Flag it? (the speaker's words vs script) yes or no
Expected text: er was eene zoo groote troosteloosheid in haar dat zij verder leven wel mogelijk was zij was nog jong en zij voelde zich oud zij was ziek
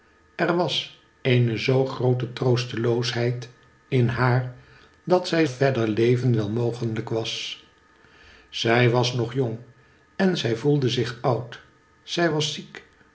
no